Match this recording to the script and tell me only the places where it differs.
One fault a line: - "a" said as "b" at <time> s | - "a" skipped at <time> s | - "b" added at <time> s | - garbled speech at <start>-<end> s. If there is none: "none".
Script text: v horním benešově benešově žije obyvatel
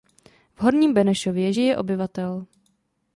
- "benešově" skipped at 1.5 s